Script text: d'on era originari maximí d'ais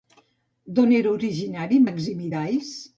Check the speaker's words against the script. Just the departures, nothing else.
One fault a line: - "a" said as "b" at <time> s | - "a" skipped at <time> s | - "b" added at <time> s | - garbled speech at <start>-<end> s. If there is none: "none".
none